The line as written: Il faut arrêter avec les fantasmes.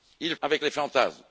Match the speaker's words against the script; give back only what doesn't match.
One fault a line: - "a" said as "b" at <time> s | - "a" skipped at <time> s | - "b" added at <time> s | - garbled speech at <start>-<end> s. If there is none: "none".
- "faut arrêter" skipped at 0.3 s